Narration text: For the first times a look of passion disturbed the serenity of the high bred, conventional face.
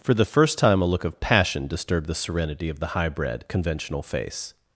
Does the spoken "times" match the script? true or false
false